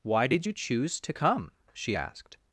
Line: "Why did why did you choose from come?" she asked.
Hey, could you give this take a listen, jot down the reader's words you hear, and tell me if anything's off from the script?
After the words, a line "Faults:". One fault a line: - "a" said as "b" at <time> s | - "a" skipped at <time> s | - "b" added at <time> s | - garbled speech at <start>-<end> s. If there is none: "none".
"Why did you choose to come?" she asked.
Faults:
- "why did" skipped at 0.5 s
- "from" said as "to" at 1.0 s